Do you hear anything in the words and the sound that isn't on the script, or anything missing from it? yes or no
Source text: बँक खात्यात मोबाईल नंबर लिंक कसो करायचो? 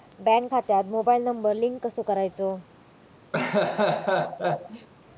yes